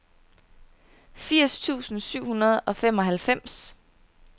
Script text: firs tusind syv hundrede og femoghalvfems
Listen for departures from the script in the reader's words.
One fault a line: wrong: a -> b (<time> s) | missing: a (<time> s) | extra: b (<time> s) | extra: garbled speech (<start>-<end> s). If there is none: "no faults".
no faults